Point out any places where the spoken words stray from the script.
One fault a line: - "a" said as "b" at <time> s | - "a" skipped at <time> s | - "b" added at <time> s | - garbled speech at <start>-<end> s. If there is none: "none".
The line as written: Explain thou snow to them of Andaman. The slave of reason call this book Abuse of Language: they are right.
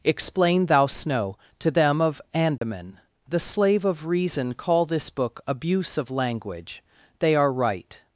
none